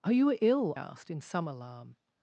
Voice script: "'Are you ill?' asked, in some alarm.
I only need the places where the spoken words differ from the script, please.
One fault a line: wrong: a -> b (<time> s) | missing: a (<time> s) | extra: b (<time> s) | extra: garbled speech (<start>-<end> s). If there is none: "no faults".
no faults